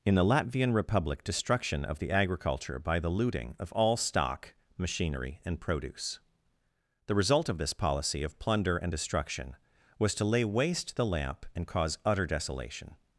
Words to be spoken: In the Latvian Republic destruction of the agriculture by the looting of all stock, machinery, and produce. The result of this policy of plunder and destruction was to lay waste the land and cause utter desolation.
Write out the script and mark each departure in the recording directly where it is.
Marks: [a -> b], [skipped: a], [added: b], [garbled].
In the Latvian Republic destruction of the agriculture by the looting of all stock, machinery, and produce. The result of this policy of plunder and destruction was to lay waste the [land -> lamp] and cause utter desolation.